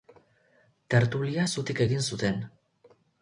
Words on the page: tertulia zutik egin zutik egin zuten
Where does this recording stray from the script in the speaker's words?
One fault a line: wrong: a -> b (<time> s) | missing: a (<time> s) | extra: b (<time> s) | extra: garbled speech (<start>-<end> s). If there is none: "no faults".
missing: zutik egin (2.0 s)